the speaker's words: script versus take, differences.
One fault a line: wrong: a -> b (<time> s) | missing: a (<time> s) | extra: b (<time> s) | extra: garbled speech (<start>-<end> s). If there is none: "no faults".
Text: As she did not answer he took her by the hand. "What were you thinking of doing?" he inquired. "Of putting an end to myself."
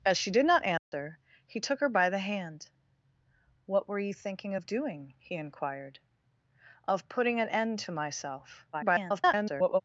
extra: garbled speech (8.7-9.8 s)